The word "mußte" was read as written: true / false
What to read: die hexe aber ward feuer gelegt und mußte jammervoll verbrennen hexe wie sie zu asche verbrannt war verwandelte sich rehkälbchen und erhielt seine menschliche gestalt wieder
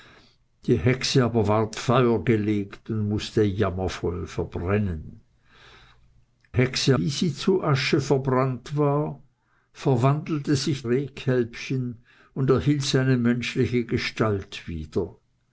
true